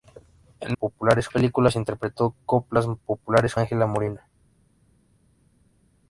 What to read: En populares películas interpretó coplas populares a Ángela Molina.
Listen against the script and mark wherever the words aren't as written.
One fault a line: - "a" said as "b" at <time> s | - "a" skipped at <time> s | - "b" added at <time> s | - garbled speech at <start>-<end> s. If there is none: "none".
none